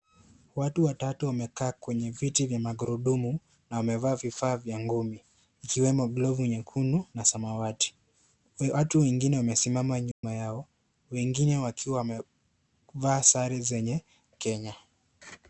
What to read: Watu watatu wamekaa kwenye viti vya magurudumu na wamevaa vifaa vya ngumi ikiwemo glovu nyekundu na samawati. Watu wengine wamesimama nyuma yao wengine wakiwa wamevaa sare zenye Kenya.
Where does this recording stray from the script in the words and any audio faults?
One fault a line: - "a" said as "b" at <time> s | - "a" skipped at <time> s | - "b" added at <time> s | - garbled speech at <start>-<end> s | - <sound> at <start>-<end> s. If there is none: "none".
- dropout at 10.1-10.2 s